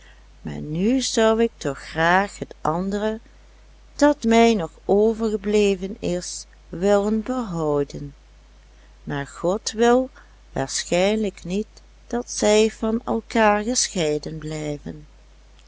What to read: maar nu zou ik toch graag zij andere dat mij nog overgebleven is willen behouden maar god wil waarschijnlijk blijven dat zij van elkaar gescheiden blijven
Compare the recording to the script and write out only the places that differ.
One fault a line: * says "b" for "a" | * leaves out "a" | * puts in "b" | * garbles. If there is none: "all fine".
* says "het" for "zij"
* says "niet" for "blijven"